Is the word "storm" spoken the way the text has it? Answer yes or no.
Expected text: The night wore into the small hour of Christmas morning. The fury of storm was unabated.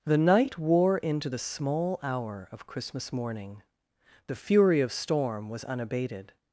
yes